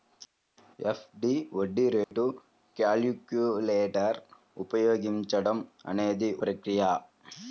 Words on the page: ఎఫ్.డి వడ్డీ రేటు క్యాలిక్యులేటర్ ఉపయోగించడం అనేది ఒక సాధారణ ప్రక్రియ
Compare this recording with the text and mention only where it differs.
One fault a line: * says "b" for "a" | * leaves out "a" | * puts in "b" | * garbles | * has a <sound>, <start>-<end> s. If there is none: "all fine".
* has a dropout, 2.0-2.1 s
* leaves out "ఒక సాధారణ"